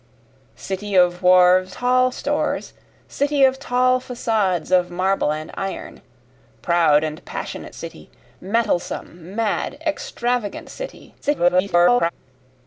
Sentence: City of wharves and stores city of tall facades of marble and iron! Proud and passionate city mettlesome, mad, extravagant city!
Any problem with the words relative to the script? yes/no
yes